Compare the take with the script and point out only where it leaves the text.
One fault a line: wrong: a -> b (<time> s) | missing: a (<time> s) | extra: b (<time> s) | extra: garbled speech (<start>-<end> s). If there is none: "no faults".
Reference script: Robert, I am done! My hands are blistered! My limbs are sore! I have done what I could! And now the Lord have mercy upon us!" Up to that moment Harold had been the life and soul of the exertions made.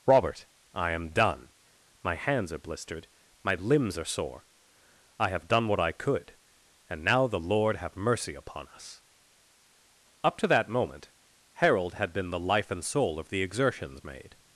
no faults